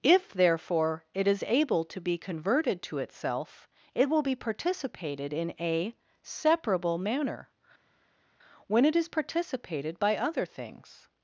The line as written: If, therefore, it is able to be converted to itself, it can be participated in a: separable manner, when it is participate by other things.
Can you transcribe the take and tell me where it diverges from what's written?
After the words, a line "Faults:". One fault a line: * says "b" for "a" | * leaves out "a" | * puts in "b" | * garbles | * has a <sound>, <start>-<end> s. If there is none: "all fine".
If, therefore, it is able to be converted to itself, it will be participated in a: separable manner, when it is participated by other things.
Faults:
* says "will" for "can"
* says "participated" for "participate"